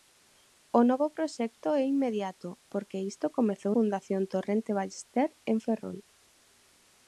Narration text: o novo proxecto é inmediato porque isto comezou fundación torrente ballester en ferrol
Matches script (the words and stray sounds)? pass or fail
pass